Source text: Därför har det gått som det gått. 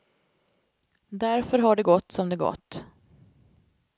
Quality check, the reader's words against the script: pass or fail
pass